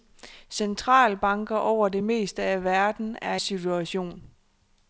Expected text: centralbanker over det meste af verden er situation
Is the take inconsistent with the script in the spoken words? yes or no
no